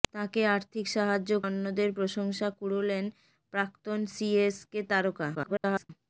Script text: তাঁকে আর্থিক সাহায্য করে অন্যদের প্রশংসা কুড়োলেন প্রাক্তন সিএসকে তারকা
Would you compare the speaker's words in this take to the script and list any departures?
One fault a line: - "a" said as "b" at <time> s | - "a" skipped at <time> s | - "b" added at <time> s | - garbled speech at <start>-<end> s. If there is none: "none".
- "করে" skipped at 1.3 s
- garbled speech at 5.3-5.9 s